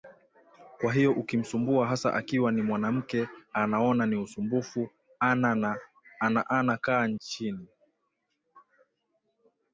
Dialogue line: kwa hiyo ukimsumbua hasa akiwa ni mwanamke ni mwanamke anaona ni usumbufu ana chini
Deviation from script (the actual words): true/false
true